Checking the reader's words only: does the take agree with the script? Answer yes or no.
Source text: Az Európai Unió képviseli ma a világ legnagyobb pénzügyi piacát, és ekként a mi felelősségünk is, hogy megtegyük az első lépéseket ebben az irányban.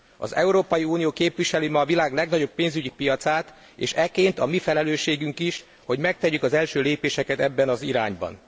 yes